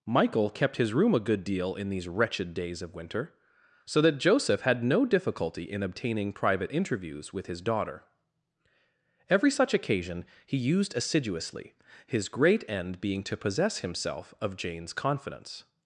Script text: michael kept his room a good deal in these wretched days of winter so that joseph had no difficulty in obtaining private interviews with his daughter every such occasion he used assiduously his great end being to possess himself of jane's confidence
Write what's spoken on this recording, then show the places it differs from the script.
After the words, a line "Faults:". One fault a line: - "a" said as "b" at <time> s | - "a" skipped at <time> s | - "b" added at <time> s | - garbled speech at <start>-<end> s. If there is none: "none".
michael kept his room a good deal in these wretched days of winter so that joseph had no difficulty in obtaining private interviews with his daughter every such occasion he used assiduously his great end being to possess himself of jane's confidence
Faults:
none